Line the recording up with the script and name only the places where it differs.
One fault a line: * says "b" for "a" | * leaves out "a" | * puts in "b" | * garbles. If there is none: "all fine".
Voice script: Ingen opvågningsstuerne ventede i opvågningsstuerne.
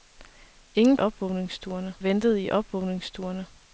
all fine